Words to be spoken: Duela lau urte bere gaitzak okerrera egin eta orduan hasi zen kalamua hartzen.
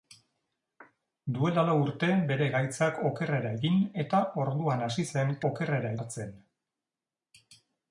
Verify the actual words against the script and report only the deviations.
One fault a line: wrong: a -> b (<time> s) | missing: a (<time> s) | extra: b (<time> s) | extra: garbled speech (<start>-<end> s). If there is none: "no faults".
wrong: kalamua -> okerrera (5.5 s)